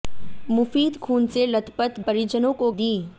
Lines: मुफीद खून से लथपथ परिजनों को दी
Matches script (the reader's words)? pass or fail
pass